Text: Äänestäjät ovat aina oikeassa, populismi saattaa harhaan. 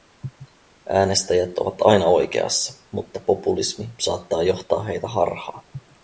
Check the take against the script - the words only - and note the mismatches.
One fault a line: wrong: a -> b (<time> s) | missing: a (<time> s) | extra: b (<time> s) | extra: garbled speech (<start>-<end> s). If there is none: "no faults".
extra: mutta (2.9 s)
extra: johtaa heitä (4.4 s)